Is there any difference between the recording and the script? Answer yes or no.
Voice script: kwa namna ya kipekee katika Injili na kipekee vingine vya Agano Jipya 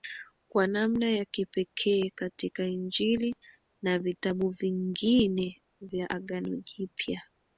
yes